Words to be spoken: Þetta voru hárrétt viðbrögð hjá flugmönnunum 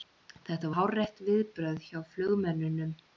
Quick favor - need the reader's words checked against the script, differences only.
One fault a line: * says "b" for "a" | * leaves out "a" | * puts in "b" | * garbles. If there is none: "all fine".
* leaves out "voru"